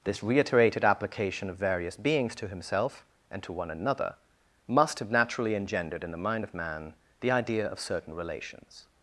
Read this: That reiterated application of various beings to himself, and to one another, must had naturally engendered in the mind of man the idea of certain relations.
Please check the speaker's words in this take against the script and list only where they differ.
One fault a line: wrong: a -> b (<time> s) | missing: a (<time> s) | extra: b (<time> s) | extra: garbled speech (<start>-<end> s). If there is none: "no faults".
wrong: That -> This (0.0 s)
wrong: had -> have (5.0 s)